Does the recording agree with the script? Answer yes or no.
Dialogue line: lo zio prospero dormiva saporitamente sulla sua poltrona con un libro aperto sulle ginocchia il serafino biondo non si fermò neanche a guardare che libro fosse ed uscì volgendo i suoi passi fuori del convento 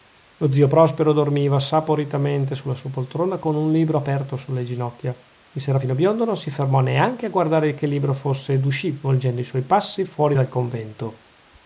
yes